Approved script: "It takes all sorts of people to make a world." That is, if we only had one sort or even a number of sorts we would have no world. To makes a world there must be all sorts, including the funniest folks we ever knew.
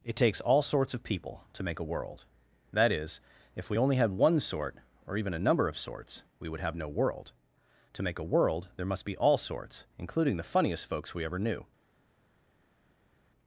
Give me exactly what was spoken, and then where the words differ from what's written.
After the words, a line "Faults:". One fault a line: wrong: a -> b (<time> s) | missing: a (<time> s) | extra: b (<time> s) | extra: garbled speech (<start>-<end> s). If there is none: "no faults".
"It takes all sorts of people to make a world." That is, if we only had one sort or even a number of sorts we would have no world. To make a world there must be all sorts, including the funniest folks we ever knew.
Faults:
wrong: makes -> make (8.0 s)